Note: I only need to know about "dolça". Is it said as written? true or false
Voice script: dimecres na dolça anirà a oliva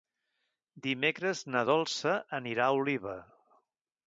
true